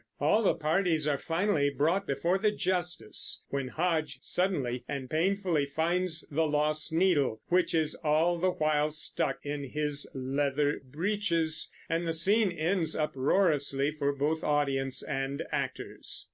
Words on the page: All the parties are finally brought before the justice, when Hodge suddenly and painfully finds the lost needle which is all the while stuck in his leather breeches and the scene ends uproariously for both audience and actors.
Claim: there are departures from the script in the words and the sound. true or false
false